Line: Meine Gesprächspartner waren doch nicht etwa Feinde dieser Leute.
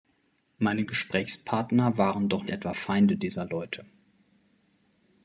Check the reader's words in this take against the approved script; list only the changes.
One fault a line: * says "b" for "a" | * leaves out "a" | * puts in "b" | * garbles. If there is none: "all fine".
* leaves out "nicht"